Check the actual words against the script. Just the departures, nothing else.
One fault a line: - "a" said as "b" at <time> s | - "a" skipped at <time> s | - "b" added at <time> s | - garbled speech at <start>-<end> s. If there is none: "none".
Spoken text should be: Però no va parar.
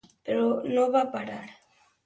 none